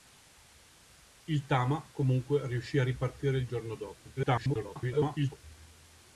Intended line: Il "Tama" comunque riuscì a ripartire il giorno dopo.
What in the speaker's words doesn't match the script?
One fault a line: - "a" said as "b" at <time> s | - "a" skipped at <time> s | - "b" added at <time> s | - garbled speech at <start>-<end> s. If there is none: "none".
- garbled speech at 4.2-5.4 s